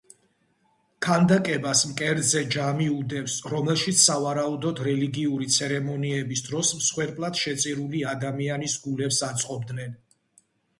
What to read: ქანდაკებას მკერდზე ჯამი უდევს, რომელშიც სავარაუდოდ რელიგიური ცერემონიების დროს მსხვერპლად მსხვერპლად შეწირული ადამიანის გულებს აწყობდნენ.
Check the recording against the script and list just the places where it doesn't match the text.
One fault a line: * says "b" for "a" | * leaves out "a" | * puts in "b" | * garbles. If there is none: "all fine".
* leaves out "მსხვერპლად"